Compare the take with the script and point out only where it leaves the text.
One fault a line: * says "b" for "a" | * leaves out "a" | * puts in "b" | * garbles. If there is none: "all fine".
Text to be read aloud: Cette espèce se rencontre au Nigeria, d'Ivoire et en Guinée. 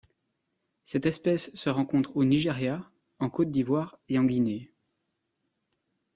* puts in "en Côte"